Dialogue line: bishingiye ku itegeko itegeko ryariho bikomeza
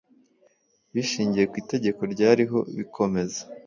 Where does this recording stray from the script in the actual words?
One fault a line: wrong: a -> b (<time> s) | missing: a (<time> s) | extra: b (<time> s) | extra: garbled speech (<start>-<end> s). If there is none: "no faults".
missing: itegeko (2.0 s)